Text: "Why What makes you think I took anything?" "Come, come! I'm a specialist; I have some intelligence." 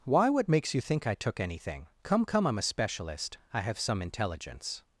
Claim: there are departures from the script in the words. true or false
false